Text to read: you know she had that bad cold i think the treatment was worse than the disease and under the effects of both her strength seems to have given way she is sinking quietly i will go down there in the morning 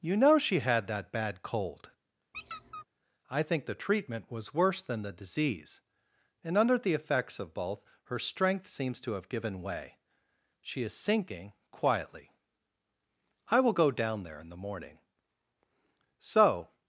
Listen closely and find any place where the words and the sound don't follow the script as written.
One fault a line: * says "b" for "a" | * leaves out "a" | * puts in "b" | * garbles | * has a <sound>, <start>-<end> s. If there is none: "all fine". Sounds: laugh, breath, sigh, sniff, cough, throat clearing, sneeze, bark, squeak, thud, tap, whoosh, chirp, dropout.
* has a squeak, 2.3-2.8 s
* puts in "so"